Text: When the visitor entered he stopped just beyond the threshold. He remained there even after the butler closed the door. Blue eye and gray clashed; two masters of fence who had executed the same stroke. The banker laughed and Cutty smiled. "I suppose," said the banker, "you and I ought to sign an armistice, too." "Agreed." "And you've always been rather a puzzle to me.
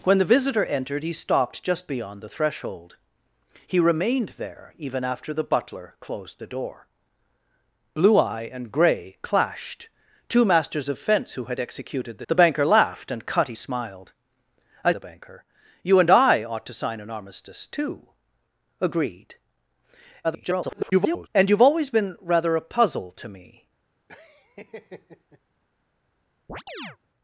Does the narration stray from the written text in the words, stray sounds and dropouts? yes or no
yes